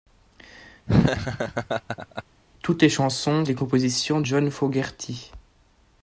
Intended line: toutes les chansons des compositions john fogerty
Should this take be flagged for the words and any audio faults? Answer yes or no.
yes